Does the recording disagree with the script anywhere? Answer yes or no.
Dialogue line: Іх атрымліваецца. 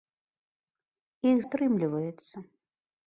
no